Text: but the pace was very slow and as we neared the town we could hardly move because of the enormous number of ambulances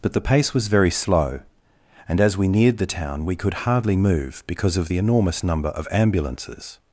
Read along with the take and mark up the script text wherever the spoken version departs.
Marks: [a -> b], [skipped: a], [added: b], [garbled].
but the pace was very slow and as we neared the town we could hardly move because of the enormous number of ambulances